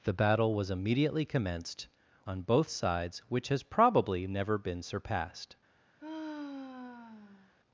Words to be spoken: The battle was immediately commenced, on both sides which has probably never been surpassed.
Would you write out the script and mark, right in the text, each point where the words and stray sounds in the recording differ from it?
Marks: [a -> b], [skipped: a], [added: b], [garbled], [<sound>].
The battle was immediately commenced, on both sides which has probably never been surpassed. [sigh]